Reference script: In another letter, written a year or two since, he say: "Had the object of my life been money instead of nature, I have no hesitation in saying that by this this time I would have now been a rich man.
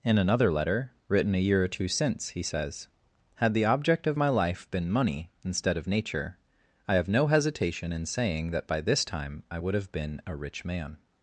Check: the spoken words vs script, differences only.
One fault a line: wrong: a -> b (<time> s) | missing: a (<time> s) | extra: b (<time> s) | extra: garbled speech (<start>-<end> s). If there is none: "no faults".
wrong: say -> says (2.4 s)
missing: this (9.0 s)
missing: now (9.9 s)